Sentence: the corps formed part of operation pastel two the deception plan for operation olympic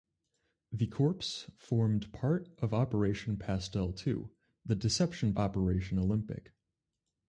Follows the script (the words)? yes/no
no